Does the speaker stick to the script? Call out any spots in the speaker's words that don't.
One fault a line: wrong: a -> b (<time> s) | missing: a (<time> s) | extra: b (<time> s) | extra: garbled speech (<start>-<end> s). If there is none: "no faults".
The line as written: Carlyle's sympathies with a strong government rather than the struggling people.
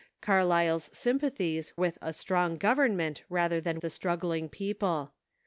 no faults